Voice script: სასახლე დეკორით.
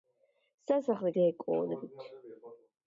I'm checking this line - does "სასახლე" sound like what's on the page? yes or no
yes